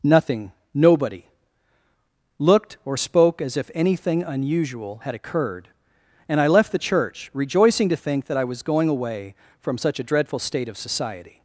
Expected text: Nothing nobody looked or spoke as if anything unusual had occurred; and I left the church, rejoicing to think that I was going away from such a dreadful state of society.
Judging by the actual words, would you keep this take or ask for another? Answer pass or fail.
pass